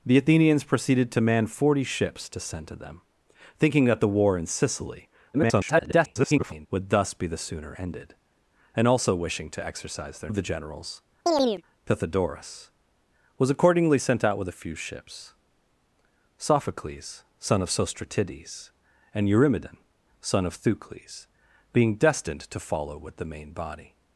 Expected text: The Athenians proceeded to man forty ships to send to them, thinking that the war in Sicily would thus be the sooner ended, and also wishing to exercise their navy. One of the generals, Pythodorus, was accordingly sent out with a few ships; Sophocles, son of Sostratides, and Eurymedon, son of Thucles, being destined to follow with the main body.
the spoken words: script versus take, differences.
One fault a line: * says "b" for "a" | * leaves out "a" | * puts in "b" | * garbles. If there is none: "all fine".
* garbles
* leaves out "navy One"